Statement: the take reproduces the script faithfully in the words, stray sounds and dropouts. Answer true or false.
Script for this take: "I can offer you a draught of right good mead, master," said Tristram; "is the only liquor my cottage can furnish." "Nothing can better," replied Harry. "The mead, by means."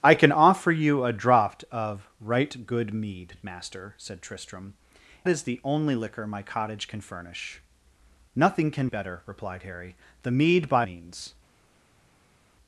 true